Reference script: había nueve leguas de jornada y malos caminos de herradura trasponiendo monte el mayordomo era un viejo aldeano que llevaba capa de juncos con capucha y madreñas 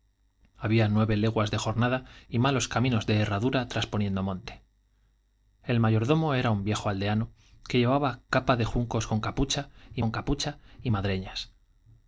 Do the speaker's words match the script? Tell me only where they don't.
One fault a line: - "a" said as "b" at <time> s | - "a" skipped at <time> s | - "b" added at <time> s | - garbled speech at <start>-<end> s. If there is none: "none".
- "con capucha y" added at 10.0 s